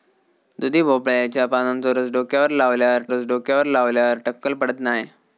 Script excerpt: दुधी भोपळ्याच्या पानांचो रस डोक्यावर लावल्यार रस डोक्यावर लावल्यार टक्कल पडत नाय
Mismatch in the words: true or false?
false